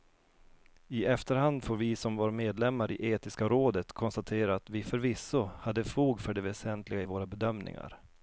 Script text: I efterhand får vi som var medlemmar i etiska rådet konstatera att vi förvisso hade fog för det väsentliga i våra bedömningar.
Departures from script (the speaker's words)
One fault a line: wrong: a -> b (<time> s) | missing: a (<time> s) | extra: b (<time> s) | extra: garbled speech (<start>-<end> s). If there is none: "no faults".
no faults